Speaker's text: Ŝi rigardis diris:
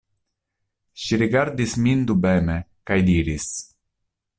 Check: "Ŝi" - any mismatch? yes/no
no